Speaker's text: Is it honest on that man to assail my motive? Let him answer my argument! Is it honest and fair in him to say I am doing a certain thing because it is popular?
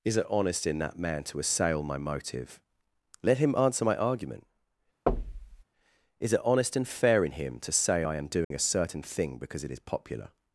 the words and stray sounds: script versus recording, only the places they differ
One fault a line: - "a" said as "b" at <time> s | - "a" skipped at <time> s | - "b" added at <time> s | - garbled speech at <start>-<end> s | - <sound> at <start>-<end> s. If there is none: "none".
- "on" said as "in" at 0.7 s
- thud at 5.1-5.6 s
- dropout at 8.4-8.5 s